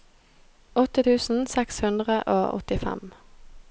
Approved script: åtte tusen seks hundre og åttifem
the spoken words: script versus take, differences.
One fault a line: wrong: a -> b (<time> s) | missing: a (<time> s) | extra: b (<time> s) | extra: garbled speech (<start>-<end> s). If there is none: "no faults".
no faults